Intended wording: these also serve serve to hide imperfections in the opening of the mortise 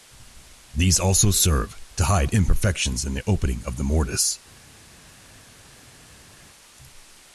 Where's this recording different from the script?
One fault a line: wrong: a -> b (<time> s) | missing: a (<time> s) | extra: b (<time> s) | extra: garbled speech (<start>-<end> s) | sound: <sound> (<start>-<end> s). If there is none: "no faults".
missing: serve (1.8 s)